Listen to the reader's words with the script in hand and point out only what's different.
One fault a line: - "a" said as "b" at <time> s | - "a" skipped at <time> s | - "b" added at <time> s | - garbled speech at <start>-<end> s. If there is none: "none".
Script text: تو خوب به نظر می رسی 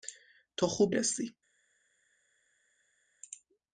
- "به نظر می" skipped at 0.9 s